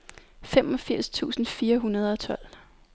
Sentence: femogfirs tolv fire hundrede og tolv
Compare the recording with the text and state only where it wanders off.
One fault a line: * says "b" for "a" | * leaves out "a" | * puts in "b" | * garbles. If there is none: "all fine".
* says "tusind" for "tolv"